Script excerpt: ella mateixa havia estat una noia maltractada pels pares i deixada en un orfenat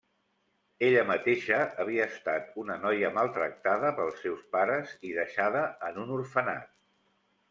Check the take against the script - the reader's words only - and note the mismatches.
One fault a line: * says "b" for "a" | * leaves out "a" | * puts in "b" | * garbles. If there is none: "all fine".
* puts in "seus"